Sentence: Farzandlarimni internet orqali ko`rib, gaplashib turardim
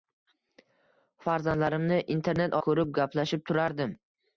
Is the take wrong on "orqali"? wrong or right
wrong